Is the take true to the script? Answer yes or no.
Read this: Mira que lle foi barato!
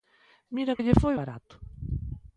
yes